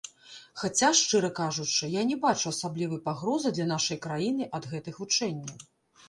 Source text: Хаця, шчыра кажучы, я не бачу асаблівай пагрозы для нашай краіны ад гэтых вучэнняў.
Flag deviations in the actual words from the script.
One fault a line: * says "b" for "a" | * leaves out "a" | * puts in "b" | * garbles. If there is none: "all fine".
all fine